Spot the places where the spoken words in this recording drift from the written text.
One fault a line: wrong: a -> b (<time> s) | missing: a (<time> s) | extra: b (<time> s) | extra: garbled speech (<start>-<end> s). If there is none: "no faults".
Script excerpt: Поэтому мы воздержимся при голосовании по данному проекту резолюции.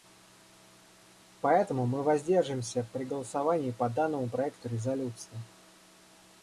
no faults